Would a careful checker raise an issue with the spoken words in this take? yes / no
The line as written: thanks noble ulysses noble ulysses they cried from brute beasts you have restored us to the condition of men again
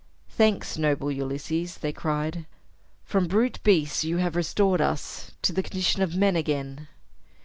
yes